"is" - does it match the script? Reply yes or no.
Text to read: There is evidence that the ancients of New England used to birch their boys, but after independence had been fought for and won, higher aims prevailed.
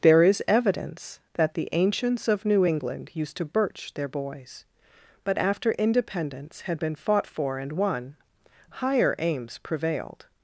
yes